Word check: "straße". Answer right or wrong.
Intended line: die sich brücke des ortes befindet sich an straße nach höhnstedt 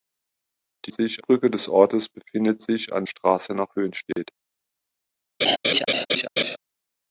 right